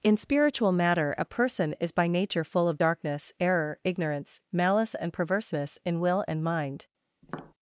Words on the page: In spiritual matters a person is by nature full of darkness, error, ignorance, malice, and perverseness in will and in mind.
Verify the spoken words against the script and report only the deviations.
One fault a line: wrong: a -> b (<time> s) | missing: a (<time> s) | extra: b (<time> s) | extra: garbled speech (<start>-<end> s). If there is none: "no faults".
wrong: matters -> matter (0.7 s)
missing: in (6.4 s)